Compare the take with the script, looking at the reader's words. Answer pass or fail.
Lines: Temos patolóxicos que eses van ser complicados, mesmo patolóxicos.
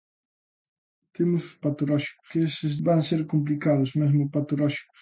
pass